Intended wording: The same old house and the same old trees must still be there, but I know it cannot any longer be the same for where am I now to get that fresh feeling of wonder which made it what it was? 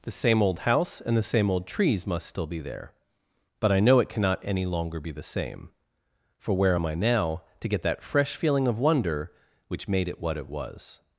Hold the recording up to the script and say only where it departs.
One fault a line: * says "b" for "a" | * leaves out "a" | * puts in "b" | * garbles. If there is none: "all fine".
all fine